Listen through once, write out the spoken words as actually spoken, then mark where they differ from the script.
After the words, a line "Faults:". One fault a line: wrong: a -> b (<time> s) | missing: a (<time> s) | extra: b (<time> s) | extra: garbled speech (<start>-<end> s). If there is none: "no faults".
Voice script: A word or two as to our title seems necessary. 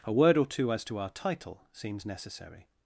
A word or two as to our title seems necessary.
Faults:
no faults